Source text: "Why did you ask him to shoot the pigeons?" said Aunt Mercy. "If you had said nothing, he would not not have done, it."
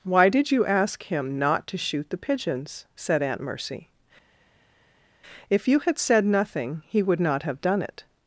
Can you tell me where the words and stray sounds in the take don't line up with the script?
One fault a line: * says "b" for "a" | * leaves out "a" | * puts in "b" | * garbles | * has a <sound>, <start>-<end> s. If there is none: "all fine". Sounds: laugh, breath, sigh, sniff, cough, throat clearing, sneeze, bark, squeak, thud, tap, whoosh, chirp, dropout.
* puts in "not"
* leaves out "not"